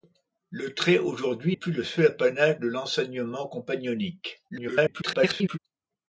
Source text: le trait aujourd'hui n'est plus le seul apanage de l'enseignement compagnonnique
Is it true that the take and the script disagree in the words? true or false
true